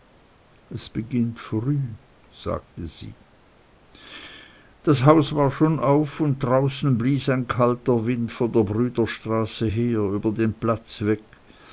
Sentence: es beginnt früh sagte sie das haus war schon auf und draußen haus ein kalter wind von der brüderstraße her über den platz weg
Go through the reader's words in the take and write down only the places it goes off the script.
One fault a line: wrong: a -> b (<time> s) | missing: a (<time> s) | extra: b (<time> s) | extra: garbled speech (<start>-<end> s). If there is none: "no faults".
wrong: haus -> blies (7.0 s)